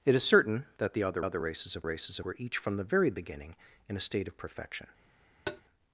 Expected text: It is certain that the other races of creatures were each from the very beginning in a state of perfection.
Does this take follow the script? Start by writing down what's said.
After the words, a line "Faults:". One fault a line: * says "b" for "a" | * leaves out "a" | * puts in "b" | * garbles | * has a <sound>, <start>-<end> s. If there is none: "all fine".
It is certain that the other other races of races were each from the very beginning in a state of perfection.
Faults:
* puts in "other"
* says "races" for "creatures"
* has a tap, 5.5-5.6 s